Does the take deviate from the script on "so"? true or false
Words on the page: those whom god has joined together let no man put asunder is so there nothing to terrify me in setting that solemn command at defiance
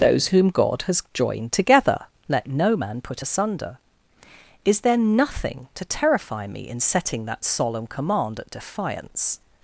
true